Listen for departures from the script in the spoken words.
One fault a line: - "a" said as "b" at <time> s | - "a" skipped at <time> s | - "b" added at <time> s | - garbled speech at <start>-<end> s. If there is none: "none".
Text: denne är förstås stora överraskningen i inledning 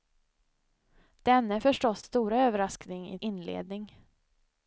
none